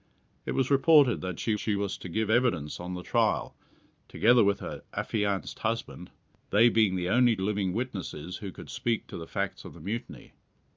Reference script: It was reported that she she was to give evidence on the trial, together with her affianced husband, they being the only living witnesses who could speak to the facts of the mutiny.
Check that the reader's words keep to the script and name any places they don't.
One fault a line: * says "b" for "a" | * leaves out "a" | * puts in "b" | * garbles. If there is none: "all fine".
all fine